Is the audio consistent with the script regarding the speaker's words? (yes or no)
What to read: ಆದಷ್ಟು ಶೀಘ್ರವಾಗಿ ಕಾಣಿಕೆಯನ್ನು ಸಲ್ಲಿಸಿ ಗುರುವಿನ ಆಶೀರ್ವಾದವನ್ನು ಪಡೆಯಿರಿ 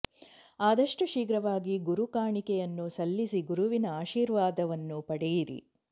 no